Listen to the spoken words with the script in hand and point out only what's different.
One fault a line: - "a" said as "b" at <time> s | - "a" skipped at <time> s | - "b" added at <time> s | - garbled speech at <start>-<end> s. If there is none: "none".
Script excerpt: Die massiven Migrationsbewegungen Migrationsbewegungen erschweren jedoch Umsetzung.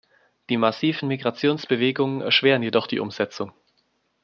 - "Migrationsbewegungen" skipped at 2.2 s
- "die" added at 2.9 s